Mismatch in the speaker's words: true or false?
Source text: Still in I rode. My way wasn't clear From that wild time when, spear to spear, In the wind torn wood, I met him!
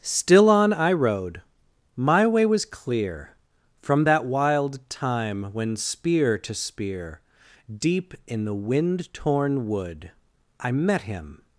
true